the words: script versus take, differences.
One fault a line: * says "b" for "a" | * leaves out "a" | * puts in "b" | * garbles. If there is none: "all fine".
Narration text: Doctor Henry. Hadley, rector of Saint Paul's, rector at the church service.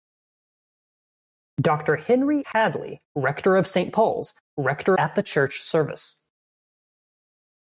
all fine